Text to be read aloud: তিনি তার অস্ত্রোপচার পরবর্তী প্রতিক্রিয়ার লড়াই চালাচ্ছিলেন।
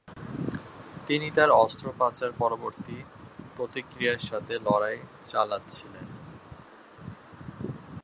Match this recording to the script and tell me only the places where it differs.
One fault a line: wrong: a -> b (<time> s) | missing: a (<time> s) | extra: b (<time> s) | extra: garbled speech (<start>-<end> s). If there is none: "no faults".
extra: সাথে (4.2 s)